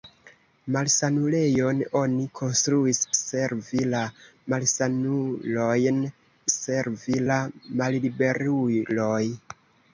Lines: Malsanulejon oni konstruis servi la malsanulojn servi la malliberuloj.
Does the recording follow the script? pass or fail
pass